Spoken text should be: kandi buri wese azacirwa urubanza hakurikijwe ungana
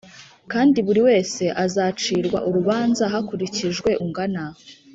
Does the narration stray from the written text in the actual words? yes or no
no